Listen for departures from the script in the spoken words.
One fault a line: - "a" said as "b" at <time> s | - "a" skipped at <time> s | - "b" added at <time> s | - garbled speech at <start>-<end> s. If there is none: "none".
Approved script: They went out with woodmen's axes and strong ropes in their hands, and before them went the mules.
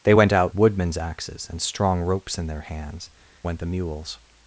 - "with" skipped at 0.5 s
- "and before them" skipped at 3.1 s